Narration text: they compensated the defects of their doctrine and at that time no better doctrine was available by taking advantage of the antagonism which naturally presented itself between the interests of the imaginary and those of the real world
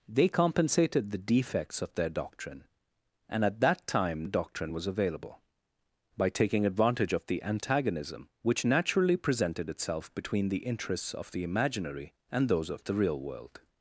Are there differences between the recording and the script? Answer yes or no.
yes